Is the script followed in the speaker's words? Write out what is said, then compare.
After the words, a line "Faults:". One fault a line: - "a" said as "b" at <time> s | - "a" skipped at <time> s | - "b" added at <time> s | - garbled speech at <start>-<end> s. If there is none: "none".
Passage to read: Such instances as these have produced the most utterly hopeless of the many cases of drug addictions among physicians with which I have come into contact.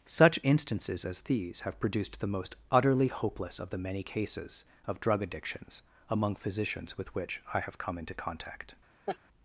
Such instances as these have produced the most utterly hopeless of the many cases of drug addictions among physicians with which I have come into contact.
Faults:
none